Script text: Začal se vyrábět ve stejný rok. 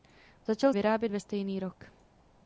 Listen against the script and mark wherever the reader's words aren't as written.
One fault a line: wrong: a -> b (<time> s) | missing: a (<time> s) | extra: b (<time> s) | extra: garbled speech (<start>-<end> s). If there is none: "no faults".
missing: se (0.7 s)